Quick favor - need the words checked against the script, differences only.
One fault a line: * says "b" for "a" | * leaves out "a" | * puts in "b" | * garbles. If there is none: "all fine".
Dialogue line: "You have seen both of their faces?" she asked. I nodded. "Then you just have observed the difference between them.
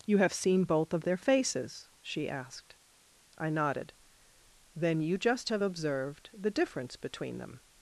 all fine